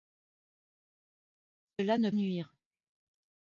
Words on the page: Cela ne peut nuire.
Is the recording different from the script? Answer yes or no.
yes